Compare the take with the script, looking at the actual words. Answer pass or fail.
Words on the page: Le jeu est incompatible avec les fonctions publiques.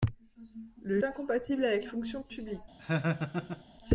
fail